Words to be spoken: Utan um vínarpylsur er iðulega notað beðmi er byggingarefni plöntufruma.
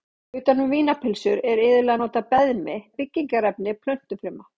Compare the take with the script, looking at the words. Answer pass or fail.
pass